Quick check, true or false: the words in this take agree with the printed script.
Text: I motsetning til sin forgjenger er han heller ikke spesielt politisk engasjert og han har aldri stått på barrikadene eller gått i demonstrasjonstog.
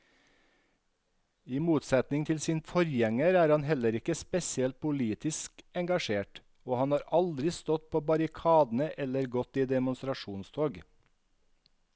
true